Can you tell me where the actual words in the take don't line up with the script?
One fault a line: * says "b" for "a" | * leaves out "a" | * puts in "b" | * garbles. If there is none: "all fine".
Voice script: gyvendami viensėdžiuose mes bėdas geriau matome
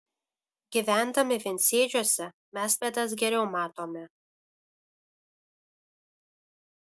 all fine